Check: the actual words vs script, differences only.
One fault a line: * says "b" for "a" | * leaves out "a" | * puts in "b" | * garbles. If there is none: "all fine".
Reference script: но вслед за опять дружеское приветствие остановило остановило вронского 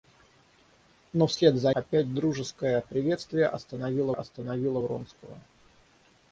all fine